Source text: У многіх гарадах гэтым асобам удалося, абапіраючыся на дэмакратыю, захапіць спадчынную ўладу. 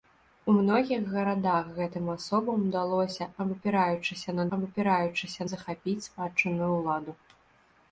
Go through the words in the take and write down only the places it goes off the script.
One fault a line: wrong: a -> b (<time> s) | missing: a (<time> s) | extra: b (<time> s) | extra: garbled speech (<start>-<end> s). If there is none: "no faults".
wrong: дэмакратыю -> абапіраючыся (4.6 s)